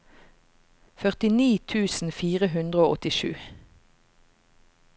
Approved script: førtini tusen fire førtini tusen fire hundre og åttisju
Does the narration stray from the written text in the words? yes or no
yes